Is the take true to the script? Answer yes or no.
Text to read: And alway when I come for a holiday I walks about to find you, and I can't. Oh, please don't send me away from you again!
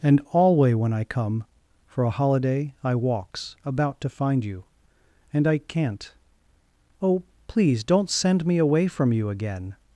yes